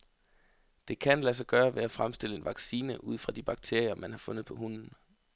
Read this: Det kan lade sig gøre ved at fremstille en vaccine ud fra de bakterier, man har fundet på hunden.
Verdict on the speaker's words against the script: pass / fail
pass